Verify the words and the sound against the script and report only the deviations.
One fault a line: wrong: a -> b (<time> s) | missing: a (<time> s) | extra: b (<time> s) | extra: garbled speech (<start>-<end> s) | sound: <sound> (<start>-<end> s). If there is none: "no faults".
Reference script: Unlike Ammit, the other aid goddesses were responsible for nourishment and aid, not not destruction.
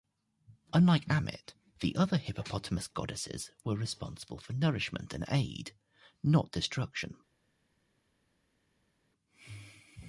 wrong: aid -> hippopotamus (2.2 s)
missing: not (6.5 s)